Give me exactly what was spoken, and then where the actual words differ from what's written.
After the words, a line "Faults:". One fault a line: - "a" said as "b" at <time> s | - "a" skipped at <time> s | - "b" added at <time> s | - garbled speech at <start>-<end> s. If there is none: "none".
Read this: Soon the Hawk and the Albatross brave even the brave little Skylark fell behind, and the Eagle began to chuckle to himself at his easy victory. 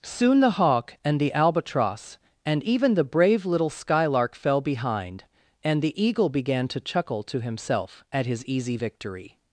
Soon the Hawk and the Albatross and even the brave little Skylark fell behind, and the Eagle began to chuckle to himself at his easy victory.
Faults:
- "brave" said as "and" at 2.5 s